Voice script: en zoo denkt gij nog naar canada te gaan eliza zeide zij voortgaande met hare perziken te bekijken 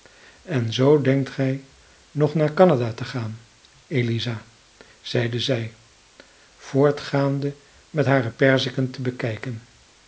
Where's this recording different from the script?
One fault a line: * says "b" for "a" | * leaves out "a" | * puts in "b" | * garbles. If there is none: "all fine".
all fine